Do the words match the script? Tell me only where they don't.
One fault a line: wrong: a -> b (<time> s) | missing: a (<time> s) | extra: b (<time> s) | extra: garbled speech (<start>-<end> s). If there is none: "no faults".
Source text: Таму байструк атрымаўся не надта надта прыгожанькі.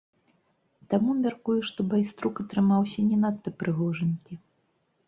extra: мяркую што (1.2 s)
missing: надта (3.5 s)